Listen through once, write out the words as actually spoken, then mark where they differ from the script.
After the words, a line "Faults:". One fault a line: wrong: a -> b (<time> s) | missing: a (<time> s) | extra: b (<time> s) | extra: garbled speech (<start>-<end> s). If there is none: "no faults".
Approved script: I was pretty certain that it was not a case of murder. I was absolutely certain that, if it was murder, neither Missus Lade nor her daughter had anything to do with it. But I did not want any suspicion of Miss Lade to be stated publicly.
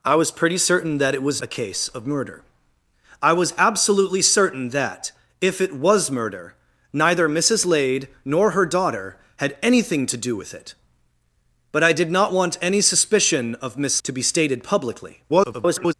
I was pretty certain that it was a case of murder. I was absolutely certain that, if it was murder, neither Missus Lade nor her daughter had anything to do with it. But I did not want any suspicion of Miss To be stated publicly. [garbled]
Faults:
missing: not (1.4 s)
missing: Lade (14.0 s)
extra: garbled speech (15.3-15.9 s)